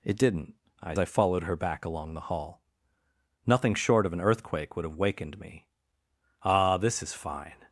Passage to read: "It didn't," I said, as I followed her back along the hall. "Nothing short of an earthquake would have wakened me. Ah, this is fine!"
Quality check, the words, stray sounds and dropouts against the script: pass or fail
fail